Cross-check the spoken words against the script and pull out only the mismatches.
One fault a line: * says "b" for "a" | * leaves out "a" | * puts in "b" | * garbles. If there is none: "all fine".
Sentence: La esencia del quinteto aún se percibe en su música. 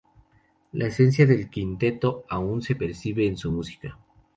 all fine